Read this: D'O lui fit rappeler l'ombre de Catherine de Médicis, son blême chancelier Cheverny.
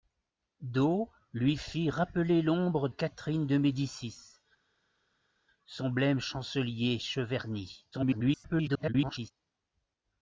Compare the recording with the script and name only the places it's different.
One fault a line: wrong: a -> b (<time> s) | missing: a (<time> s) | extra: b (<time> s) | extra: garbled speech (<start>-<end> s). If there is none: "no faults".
missing: de (2.9 s)
extra: garbled speech (7.9-9.3 s)